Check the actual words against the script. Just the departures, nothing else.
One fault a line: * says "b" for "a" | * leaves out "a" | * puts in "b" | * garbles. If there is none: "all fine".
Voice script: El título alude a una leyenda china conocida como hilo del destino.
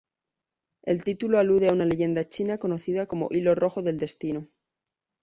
* puts in "rojo"